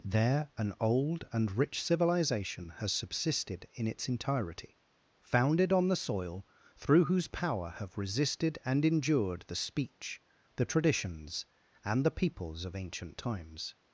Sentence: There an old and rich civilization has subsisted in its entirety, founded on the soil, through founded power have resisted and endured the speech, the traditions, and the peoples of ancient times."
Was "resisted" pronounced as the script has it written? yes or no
yes